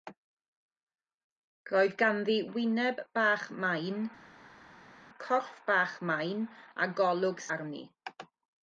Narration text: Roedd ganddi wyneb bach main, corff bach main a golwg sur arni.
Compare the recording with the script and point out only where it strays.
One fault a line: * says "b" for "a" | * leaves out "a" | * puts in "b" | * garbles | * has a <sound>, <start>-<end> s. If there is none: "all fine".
* leaves out "sur"